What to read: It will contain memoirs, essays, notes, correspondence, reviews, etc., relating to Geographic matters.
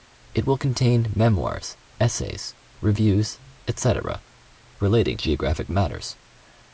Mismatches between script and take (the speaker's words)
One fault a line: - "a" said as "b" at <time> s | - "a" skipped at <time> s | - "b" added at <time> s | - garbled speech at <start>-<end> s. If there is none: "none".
- "notes correspondence" skipped at 2.5 s
- "to" skipped at 5.2 s